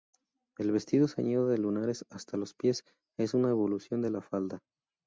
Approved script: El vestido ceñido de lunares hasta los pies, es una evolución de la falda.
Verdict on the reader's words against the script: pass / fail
pass